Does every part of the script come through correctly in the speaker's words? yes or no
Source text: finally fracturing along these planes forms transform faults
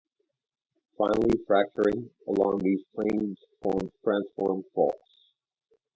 yes